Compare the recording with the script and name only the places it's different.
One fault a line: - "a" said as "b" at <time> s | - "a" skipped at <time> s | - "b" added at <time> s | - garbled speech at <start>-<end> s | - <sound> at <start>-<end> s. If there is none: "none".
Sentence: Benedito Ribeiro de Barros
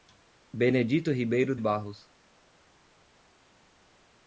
- "de" skipped at 1.6 s